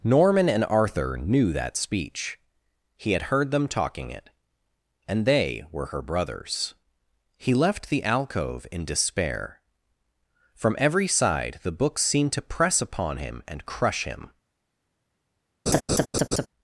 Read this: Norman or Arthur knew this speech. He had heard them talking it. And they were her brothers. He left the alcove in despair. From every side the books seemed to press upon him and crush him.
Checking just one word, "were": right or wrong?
right